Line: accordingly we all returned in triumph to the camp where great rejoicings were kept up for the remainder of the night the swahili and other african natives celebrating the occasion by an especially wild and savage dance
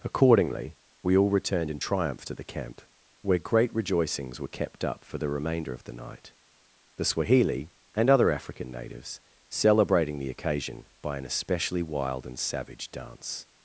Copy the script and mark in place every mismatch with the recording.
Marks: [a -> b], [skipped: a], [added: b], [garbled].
accordingly we all returned in triumph to the camp where great rejoicings were kept up for the remainder of the night the swahili and other african natives celebrating the occasion by an especially wild and savage dance